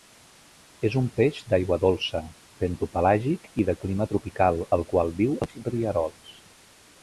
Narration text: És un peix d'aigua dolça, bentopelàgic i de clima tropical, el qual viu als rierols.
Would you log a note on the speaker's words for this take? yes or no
no